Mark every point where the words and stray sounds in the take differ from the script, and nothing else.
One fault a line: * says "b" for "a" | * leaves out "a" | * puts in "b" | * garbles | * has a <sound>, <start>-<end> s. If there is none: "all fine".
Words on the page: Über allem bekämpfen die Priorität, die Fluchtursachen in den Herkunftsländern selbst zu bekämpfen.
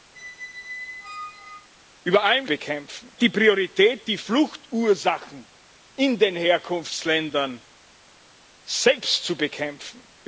* has a squeak, 0.1-1.7 s